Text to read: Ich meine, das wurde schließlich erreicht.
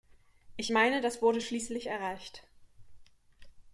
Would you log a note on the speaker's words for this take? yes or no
no